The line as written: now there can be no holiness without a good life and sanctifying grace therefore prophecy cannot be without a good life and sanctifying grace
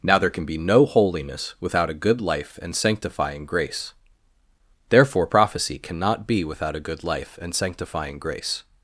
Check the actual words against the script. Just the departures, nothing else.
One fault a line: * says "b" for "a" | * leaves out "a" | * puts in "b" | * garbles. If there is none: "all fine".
all fine